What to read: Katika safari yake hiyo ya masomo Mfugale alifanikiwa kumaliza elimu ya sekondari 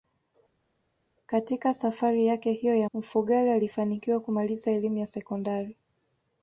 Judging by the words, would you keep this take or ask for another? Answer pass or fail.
fail